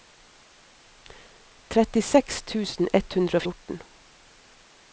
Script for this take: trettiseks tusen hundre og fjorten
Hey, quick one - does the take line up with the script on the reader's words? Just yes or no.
no